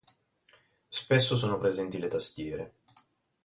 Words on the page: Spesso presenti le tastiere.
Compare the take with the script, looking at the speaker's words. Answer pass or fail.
fail